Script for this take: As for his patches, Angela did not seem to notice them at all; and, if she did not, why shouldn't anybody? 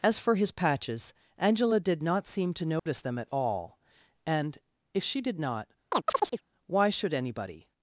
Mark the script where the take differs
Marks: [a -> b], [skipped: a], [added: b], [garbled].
As for his patches, Angela did not seem to notice them at all; and, if she did not, why [shouldn't -> should] anybody?